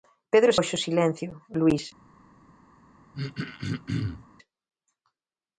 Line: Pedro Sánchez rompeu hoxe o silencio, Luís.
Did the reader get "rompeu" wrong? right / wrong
wrong